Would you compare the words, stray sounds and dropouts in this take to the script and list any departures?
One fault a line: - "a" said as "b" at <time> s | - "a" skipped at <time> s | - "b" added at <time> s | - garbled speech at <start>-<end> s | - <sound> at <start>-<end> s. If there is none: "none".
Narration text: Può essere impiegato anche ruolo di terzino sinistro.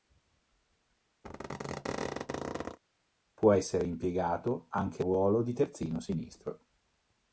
- squeak at 1.2-2.8 s